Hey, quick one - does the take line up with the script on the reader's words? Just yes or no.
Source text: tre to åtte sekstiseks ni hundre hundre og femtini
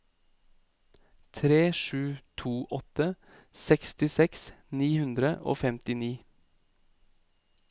no